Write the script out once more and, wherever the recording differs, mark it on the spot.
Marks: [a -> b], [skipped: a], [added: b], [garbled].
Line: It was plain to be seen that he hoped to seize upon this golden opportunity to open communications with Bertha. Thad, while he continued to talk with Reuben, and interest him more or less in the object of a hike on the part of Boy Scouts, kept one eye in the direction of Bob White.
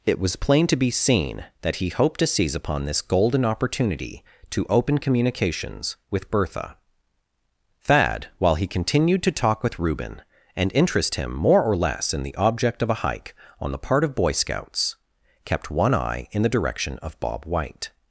It was plain to be seen that he hoped to seize upon this golden opportunity to open communications with Bertha. Thad, while he continued to talk with Reuben, and interest him more or less in the object of a hike on the part of Boy Scouts, kept one eye in the direction of Bob White.